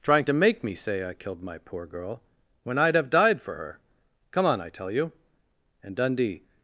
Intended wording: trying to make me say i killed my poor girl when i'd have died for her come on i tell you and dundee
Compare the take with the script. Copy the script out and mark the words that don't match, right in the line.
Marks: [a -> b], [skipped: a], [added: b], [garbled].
trying to make me say i killed my poor girl when i'd have died for her come on i tell you and dundee